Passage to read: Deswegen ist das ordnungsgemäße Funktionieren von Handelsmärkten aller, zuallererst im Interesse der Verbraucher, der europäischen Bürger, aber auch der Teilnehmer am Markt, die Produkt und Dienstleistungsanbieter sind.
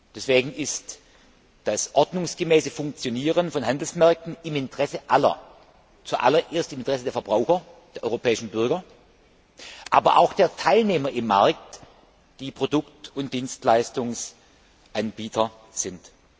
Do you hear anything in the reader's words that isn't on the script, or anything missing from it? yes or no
yes